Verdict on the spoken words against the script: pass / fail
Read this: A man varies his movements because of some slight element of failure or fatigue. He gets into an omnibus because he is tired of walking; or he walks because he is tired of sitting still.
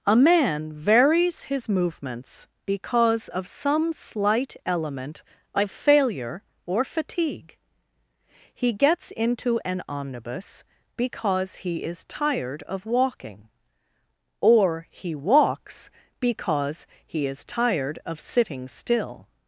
pass